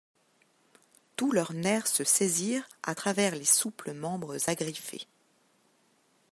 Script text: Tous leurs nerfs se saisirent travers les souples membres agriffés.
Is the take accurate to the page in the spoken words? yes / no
no